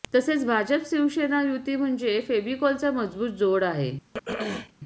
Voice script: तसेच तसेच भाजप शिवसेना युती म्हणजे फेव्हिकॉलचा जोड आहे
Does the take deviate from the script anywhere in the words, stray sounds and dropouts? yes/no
yes